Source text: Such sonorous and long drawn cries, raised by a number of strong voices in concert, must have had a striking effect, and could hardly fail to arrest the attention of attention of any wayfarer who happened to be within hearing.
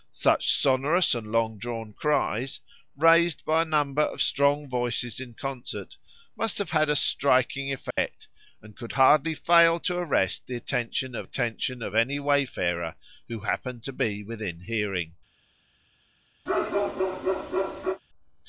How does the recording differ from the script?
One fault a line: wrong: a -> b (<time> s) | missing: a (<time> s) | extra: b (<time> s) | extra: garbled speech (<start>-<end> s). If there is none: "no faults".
no faults